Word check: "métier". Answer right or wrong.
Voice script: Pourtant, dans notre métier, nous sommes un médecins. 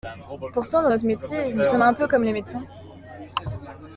right